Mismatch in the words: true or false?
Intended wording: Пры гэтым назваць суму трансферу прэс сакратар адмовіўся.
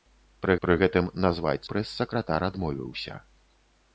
true